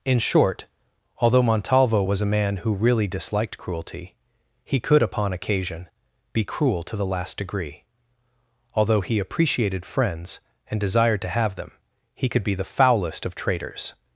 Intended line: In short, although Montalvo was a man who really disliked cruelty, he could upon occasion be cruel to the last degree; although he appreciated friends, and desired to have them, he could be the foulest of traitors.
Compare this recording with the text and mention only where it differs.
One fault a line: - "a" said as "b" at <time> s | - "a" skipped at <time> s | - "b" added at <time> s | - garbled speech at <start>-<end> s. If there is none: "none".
none